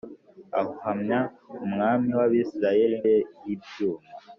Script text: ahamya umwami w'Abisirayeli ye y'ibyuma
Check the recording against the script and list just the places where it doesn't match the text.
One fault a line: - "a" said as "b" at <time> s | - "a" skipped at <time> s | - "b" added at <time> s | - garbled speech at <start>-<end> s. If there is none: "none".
none